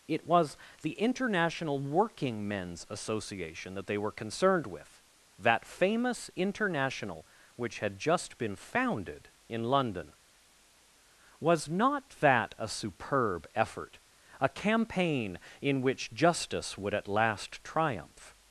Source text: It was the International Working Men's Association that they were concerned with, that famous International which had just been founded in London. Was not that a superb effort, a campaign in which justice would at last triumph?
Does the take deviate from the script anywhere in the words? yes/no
no